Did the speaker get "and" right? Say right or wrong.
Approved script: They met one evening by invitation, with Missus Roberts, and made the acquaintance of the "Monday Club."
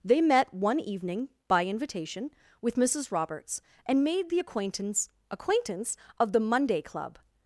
right